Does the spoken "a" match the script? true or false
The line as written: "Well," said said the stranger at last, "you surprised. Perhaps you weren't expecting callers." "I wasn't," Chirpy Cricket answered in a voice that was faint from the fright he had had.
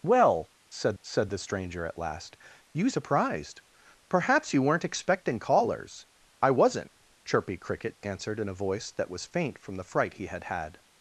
true